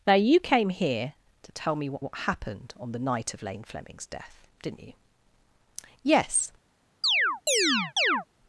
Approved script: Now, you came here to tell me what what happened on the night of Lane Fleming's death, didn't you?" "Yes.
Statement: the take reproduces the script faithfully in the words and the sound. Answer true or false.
false